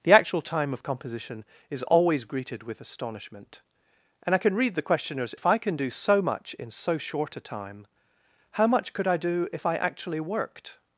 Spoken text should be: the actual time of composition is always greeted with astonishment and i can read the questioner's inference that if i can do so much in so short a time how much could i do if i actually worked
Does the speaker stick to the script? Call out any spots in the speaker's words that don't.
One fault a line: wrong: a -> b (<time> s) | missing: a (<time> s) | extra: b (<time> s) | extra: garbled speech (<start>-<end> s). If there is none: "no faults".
missing: inference that (5.3 s)